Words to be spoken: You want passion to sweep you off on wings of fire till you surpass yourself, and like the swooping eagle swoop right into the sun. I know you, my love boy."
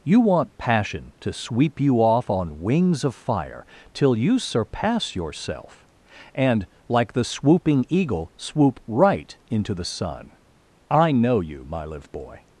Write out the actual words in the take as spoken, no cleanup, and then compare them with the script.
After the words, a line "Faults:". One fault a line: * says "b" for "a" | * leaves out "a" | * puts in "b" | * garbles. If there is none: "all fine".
You want passion to sweep you off on wings of fire till you surpass yourself, and like the swooping eagle swoop right into the sun. I know you, my live boy."
Faults:
* says "live" for "love"